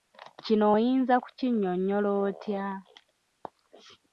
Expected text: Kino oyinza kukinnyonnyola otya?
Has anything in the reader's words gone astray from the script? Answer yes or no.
no